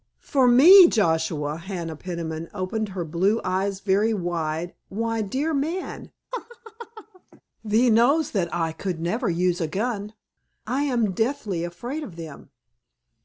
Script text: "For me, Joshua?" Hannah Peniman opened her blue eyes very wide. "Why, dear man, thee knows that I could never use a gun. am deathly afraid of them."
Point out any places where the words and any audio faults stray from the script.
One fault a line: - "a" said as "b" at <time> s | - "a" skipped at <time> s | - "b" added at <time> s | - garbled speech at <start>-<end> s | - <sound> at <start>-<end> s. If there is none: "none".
- laugh at 6.3-7.4 s
- "I" added at 10.6 s